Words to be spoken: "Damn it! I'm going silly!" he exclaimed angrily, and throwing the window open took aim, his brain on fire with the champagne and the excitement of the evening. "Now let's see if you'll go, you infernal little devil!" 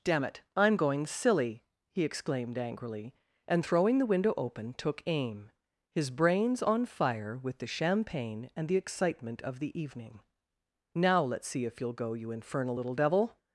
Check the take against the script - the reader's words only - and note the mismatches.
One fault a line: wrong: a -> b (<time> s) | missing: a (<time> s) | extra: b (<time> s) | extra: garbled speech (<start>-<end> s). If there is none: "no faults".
wrong: brain -> brains (6.1 s)